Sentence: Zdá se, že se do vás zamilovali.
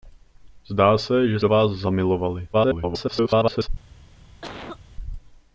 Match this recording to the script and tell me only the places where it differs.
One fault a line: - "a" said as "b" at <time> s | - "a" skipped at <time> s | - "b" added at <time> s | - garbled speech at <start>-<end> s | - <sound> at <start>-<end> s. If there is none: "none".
- "se" skipped at 1.4 s
- garbled speech at 2.5-3.7 s
- cough at 4.4-4.8 s